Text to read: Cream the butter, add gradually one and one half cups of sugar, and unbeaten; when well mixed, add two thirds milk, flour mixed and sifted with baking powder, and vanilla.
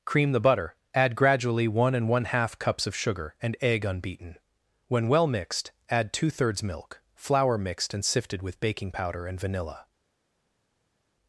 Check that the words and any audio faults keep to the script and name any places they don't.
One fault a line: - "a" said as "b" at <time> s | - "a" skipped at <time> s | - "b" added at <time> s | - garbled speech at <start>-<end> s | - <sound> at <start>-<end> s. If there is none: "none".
- "egg" added at 3.6 s